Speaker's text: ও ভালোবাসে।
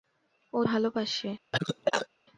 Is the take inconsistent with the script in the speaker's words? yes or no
no